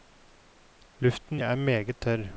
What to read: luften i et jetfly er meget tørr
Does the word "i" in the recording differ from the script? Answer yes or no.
yes